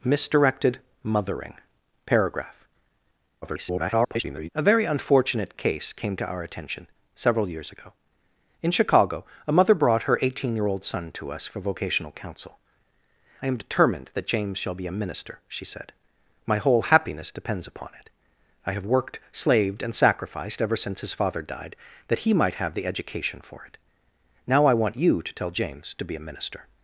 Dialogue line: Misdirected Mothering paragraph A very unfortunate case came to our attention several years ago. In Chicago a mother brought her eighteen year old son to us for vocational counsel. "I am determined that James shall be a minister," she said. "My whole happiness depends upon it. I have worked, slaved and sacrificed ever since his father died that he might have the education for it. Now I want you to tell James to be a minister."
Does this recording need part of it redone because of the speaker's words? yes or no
yes